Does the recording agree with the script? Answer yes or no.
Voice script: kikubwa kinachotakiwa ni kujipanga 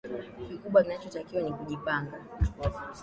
yes